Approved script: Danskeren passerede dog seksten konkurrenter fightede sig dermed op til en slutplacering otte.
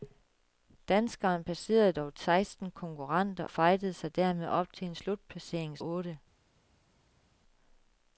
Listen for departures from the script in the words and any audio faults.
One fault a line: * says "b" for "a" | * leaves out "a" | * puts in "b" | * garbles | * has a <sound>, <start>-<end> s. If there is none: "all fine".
all fine